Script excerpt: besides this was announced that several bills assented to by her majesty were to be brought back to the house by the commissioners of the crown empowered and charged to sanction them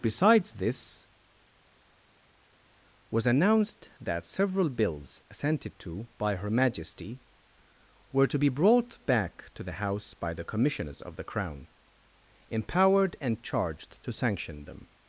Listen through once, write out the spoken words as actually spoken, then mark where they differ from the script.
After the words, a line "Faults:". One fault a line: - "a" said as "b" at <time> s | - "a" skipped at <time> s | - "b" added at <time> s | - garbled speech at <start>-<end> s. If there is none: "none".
besides this was announced that several bills assented to by her majesty were to be brought back to the house by the commissioners of the crown empowered and charged to sanction them
Faults:
none